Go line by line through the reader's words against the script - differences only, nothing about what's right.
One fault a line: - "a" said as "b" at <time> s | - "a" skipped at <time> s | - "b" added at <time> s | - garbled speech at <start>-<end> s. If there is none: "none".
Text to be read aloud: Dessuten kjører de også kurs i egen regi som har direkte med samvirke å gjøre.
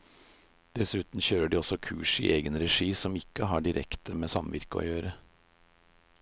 - "ikke" added at 3.2 s